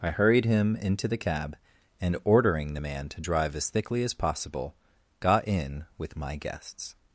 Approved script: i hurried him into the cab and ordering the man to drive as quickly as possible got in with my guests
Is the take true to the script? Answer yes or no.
no